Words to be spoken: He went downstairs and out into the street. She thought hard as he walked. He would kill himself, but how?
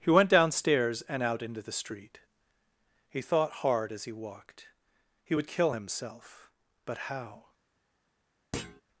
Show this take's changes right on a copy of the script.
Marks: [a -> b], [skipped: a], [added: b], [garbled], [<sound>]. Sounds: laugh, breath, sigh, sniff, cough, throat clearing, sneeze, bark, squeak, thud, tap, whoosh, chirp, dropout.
He went downstairs and out into the street. [She -> He] thought hard as he walked. He would kill himself, but how? [thud]